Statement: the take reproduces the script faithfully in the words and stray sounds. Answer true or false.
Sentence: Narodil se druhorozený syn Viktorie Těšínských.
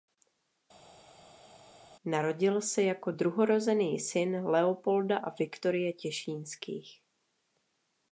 false